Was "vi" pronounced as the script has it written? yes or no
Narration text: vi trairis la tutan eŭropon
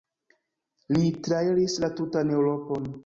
no